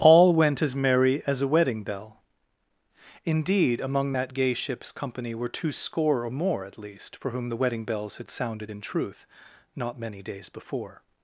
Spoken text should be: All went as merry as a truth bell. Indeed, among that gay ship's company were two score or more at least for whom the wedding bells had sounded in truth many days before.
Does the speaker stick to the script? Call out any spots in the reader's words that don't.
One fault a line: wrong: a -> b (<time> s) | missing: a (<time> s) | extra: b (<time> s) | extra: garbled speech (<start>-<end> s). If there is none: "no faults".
wrong: truth -> wedding (1.5 s)
extra: not (9.7 s)